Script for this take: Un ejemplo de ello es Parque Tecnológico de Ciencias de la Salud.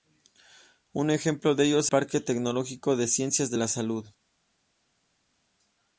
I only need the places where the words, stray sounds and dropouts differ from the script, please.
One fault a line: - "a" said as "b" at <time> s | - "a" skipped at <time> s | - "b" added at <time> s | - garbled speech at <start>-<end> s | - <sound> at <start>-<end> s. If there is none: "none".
none